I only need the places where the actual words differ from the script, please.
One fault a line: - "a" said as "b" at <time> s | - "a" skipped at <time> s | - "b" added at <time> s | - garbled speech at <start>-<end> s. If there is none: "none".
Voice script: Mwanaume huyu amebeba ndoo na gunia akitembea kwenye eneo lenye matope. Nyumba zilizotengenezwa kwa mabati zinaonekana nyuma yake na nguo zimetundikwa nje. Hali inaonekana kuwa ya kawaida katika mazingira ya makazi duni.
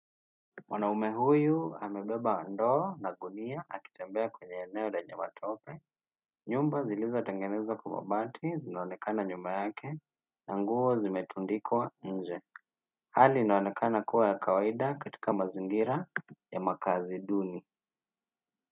none